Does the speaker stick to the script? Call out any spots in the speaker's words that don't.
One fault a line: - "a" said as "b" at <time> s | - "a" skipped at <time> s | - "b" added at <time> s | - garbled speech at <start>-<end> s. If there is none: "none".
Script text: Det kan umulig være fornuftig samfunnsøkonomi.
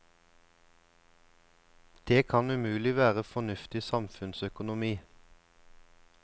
none